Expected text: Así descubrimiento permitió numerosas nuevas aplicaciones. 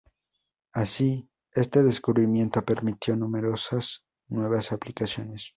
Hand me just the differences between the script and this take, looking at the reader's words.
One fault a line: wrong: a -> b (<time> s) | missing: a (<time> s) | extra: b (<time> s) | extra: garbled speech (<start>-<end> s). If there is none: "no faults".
extra: este (1.5 s)